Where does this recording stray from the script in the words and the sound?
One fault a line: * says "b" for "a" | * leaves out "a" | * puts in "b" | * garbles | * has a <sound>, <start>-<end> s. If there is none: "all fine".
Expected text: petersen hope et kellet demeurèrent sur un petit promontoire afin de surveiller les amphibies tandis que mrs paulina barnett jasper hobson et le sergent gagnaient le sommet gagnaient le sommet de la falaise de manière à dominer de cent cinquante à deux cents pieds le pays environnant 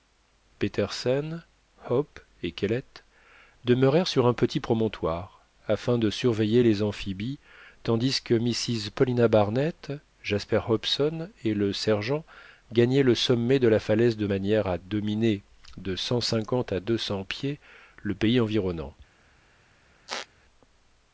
* leaves out "gagnaient le sommet"
* has a squeak, 20.1-20.3 s